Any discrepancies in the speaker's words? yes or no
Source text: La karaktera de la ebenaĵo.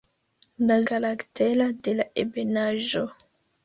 no